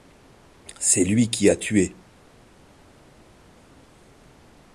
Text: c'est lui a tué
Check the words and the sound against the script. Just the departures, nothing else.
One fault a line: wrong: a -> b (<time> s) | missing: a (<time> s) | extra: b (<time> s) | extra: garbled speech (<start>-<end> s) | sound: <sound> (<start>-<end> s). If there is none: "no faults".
extra: qui (1.3 s)